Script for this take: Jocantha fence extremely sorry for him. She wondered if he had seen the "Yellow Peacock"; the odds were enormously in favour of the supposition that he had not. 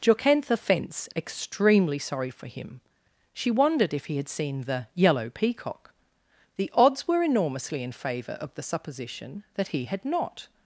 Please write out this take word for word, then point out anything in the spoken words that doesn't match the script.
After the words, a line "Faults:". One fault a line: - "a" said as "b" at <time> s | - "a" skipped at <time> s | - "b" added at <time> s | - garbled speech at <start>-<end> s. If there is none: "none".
Jocantha fence extremely sorry for him. She wondered if he had seen the "Yellow Peacock"; the odds were enormously in favour of the supposition that he had not.
Faults:
none